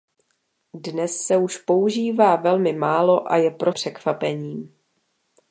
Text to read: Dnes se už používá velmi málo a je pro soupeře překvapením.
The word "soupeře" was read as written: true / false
false